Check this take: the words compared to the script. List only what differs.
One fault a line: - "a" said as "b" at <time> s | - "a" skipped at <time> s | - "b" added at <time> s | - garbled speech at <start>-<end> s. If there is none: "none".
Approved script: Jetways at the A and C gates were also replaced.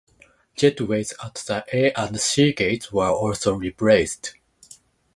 none